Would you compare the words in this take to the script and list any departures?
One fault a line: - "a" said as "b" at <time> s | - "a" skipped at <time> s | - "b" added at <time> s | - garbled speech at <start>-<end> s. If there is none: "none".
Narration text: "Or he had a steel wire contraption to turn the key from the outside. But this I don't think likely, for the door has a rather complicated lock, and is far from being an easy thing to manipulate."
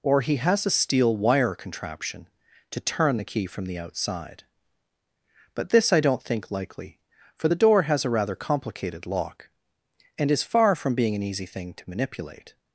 - "had" said as "has" at 0.4 s